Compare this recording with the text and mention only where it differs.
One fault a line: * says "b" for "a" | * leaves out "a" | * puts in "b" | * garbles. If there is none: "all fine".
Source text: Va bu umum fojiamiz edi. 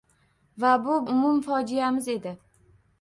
all fine